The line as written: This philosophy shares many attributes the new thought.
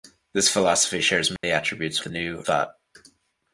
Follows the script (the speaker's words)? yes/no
yes